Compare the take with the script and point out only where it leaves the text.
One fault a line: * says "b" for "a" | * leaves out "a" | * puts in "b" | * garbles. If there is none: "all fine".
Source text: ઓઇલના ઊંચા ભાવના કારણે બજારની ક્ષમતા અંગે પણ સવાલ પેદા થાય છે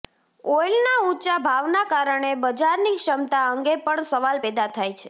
all fine